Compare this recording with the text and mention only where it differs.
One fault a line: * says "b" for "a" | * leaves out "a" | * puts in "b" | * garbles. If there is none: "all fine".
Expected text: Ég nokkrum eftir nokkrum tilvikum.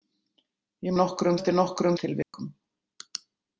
all fine